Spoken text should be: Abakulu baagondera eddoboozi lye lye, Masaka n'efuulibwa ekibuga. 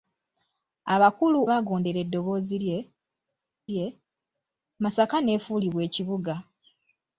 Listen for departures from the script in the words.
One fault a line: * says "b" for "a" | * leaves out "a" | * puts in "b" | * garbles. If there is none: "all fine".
all fine